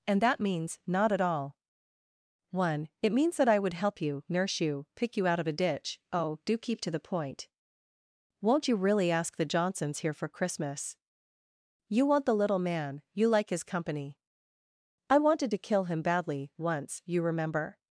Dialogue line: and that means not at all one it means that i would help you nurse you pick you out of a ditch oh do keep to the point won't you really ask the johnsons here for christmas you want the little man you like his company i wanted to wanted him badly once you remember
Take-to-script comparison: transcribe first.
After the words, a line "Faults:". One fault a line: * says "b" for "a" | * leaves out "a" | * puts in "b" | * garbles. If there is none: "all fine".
and that means not at all one it means that i would help you nurse you pick you out of a ditch oh do keep to the point won't you really ask the johnsons here for christmas you want the little man you like his company i wanted to kill him badly once you remember
Faults:
* says "kill" for "wanted"